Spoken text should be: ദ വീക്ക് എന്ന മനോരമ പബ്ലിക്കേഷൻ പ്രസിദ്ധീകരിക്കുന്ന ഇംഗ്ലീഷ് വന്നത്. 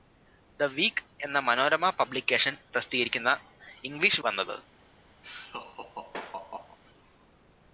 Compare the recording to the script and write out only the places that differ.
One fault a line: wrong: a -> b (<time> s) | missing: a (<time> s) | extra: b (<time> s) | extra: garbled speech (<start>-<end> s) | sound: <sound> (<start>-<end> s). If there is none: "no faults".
sound: laugh (5.2-6.8 s)